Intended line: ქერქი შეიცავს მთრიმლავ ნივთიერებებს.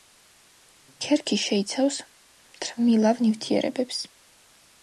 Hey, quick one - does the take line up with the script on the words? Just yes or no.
yes